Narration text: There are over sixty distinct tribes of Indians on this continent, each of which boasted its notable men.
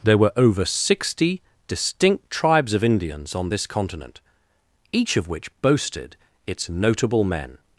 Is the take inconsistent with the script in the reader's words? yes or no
yes